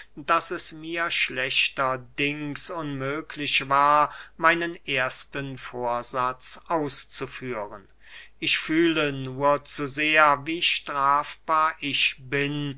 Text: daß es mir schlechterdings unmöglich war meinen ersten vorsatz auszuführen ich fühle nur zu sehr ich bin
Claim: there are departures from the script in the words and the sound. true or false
true